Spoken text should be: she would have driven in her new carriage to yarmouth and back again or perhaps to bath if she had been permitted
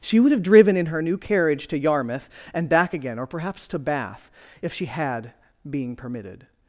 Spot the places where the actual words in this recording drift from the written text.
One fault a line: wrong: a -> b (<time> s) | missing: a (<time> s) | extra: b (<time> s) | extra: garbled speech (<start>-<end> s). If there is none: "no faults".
wrong: been -> being (5.7 s)